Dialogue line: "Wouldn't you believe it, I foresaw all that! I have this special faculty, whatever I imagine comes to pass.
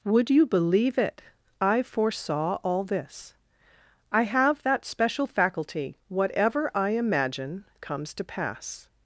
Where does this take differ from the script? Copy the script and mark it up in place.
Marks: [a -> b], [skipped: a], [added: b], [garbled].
["Wouldn't -> Would] you believe it, I foresaw all [that! -> this] I have [this -> that] special faculty, whatever I imagine comes to pass.